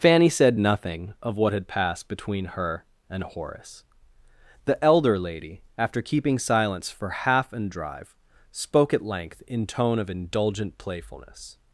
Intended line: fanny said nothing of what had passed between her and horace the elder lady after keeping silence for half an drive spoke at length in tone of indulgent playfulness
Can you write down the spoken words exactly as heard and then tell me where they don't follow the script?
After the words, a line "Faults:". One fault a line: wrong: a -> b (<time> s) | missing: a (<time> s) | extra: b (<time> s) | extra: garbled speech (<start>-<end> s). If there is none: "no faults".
fanny said nothing of what had passed between her and horace the elder lady after keeping silence for half an drive spoke at length in tone of indulgent playfulness
Faults:
no faults